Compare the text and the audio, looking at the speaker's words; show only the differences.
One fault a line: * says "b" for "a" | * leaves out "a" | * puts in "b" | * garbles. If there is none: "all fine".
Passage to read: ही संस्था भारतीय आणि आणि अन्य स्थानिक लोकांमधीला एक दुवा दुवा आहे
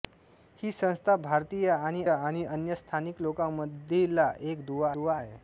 all fine